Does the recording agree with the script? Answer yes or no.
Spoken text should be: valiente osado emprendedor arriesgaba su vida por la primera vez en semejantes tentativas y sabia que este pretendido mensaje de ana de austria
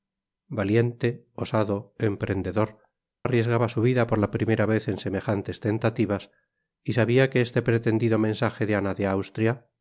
yes